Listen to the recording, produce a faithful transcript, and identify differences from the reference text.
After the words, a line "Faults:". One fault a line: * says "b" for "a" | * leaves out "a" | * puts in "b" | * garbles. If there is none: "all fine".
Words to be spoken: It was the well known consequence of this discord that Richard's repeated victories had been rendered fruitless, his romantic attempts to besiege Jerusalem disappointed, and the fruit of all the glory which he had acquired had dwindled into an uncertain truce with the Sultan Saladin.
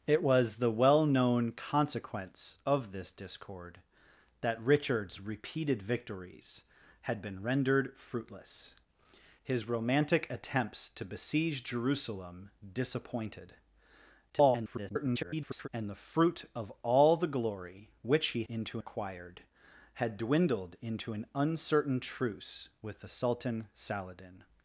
It was the well known consequence of this discord that Richard's repeated victories had been rendered fruitless, his romantic attempts to besiege Jerusalem disappointed, [garbled] and the fruit of all the glory which he into acquired had dwindled into an uncertain truce with the Sultan Saladin.
Faults:
* garbles
* says "into" for "had"